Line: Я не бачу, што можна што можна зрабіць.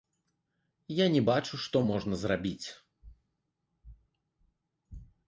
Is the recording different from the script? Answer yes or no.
yes